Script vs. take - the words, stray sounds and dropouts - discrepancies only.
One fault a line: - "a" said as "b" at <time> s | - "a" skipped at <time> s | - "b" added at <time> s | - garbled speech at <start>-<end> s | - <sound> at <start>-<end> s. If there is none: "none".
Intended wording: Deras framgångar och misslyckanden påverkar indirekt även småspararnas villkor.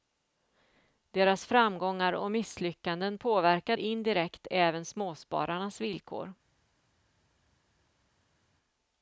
none